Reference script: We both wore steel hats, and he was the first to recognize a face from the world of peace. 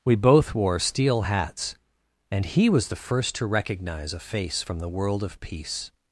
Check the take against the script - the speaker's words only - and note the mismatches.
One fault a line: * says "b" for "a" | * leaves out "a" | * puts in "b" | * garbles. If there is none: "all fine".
all fine